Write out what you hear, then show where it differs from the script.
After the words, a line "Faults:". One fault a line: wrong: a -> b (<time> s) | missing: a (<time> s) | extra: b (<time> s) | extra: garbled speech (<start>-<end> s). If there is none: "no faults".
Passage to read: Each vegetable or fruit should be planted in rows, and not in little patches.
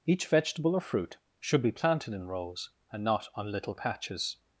Each vegetable or fruit should be planted in rows, and not on little patches.
Faults:
wrong: in -> on (3.4 s)